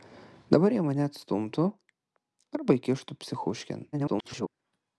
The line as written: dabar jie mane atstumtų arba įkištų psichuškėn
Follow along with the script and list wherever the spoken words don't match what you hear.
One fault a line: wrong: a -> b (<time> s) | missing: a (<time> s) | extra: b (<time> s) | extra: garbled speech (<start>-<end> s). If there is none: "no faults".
extra: garbled speech (3.9-4.5 s)